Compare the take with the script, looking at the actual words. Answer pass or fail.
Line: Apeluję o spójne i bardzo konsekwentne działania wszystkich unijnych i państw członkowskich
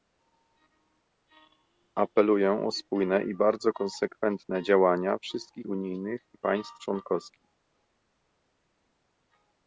pass